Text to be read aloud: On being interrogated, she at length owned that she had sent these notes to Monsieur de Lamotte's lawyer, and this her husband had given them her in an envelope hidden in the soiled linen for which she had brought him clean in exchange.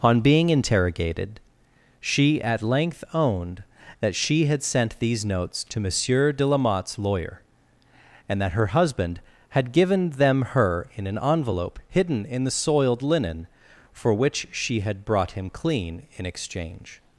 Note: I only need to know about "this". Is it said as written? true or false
false